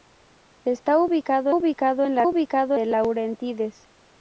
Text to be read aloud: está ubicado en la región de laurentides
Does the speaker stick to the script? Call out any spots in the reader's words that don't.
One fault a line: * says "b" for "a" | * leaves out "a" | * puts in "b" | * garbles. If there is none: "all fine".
* puts in "ubicado"
* says "ubicado" for "región"